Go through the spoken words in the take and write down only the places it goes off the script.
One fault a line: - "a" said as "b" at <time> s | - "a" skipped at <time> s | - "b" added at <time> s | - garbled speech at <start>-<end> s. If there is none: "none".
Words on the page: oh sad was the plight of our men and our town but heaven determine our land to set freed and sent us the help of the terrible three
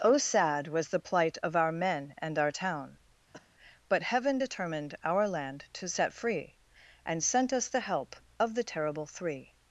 - "determine" said as "determined" at 4.3 s
- "freed" said as "free" at 6.1 s